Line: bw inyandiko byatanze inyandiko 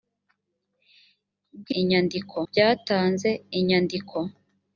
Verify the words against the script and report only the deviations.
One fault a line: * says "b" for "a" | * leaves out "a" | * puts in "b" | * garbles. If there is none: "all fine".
all fine